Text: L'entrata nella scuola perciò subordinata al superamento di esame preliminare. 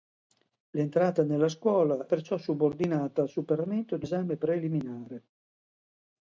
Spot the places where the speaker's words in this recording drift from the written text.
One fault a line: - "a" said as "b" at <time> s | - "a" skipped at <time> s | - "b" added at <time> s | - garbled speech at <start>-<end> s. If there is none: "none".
none